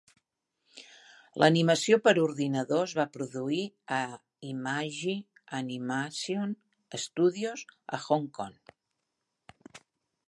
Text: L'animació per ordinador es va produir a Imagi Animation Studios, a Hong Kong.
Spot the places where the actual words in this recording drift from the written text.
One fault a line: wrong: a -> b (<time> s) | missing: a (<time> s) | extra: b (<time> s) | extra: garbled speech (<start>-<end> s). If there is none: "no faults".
no faults